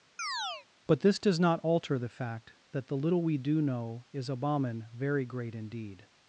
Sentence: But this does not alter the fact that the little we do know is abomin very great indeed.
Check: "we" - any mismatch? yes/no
no